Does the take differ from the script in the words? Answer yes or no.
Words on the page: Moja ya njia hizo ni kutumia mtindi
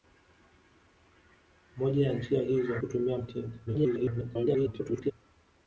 yes